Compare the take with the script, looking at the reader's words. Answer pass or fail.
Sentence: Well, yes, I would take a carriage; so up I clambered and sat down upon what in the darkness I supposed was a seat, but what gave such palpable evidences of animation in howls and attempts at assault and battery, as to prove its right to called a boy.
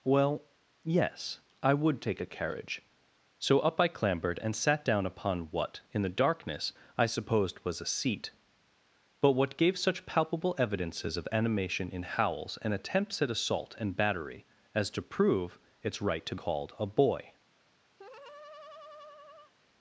pass